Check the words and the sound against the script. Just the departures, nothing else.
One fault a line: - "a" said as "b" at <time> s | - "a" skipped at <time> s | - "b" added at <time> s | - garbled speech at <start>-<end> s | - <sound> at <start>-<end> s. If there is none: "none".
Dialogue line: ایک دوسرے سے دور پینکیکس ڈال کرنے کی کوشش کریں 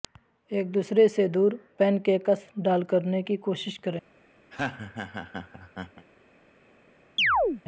- laugh at 4.5-6.1 s
- chirp at 7.2-7.6 s